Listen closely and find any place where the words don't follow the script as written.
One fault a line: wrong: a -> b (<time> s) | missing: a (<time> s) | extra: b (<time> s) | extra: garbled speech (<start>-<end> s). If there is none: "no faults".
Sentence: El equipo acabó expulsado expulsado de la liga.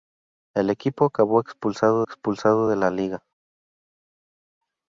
no faults